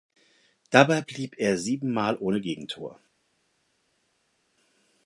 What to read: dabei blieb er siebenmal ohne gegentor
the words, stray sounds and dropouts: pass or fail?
pass